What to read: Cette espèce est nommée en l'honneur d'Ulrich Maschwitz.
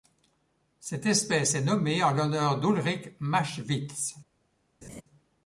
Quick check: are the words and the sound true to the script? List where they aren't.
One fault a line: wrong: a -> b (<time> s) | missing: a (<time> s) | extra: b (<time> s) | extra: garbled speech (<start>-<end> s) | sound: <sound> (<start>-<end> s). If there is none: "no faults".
sound: laugh (4.8-5.0 s)